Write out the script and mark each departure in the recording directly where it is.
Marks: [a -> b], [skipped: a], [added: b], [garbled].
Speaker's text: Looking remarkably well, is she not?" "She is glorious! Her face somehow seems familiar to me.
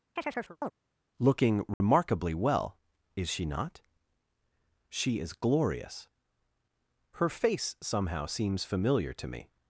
Looking remarkably well, is she not?" "She is glorious! Her face somehow seems familiar to me.